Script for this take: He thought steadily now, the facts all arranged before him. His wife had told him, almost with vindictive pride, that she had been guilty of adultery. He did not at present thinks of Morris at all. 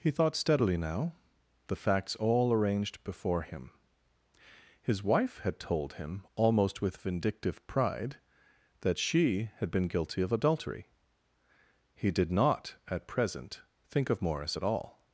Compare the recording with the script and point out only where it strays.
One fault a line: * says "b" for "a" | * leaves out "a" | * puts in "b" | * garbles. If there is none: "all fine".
* says "think" for "thinks"